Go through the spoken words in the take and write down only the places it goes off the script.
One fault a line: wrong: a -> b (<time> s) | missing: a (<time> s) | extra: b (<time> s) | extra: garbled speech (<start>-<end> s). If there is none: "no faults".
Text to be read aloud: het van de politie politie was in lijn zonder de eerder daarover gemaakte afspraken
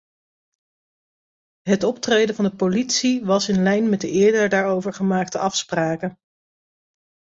extra: optreden (1.8 s)
missing: politie (3.2 s)
wrong: zonder -> met (3.9 s)